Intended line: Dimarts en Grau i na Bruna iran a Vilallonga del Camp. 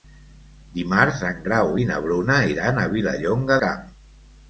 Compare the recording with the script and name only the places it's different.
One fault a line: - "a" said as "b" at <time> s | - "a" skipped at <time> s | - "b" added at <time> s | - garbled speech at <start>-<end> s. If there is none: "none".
- "del" skipped at 3.6 s